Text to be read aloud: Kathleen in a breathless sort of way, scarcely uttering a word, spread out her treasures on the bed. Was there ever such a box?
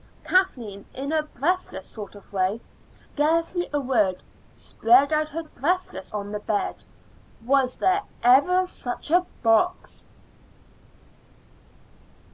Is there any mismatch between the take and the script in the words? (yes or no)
yes